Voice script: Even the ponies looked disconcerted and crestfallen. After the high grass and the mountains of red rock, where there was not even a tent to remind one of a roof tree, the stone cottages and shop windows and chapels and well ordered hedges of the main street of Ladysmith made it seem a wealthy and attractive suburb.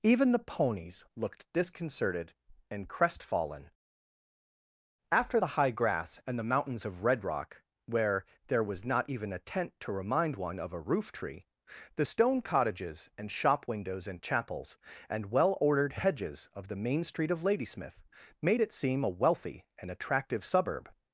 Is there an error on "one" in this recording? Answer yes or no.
no